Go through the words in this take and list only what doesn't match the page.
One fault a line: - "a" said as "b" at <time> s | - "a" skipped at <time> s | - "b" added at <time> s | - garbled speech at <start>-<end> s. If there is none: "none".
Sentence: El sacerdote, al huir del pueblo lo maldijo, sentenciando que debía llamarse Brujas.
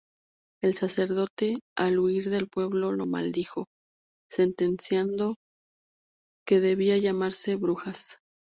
none